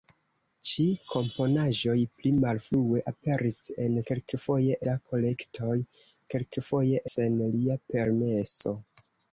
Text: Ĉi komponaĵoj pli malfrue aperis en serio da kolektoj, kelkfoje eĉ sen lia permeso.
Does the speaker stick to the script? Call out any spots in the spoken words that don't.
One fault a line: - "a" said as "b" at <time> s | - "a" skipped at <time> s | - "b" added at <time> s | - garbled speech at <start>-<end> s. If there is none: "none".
- "serio" said as "kelkfoje" at 4.1 s
- "eĉ" skipped at 7.0 s